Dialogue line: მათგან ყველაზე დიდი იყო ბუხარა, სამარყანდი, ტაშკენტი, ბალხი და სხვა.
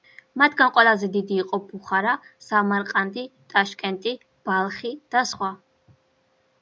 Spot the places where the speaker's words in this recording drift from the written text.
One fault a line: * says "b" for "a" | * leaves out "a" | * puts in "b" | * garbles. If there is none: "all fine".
all fine